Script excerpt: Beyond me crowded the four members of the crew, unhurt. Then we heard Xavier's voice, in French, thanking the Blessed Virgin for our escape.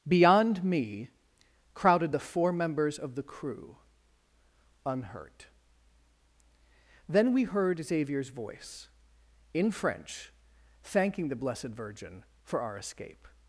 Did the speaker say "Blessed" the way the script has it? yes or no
yes